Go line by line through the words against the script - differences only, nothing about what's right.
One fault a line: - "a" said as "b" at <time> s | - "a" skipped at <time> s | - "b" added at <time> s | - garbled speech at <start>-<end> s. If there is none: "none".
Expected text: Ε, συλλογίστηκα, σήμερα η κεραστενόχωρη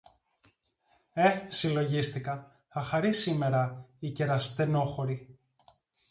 - "θα χαρεί" added at 2.7 s